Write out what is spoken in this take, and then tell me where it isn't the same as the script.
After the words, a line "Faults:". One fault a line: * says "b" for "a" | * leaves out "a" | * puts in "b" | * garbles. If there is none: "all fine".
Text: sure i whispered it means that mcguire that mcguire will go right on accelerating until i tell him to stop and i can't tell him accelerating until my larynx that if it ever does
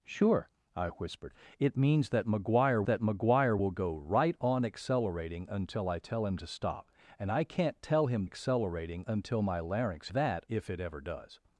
sure i whispered it means that mcguire that mcguire will go right on accelerating until i tell him to stop and i can't tell him accelerating until my larynx that if it ever does
Faults:
all fine